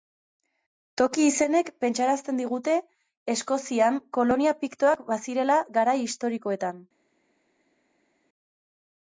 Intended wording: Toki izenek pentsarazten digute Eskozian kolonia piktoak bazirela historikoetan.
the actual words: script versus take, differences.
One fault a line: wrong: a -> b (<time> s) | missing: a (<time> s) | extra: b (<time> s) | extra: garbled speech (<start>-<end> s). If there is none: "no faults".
extra: garai (5.8 s)